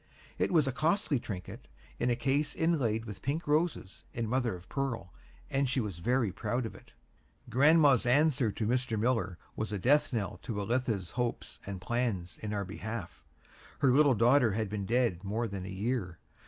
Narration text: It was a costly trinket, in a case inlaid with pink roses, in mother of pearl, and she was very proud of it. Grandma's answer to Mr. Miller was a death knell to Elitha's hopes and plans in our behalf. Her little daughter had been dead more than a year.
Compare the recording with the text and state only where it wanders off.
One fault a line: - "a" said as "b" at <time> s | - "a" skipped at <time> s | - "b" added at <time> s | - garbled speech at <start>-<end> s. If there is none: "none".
none